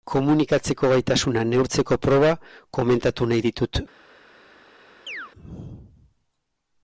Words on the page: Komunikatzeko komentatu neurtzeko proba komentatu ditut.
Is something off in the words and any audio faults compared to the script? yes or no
yes